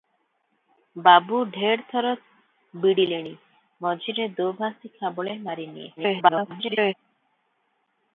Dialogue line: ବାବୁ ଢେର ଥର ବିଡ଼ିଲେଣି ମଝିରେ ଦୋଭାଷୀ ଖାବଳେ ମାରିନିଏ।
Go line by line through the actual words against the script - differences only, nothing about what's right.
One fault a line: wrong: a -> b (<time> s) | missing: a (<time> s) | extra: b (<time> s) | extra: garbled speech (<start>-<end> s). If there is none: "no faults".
extra: garbled speech (6.0-6.9 s)